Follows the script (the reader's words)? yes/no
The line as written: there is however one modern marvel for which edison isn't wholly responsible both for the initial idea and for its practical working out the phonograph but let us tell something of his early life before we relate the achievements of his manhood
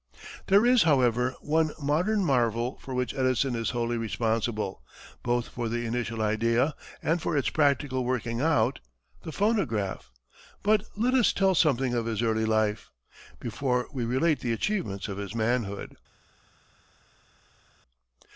no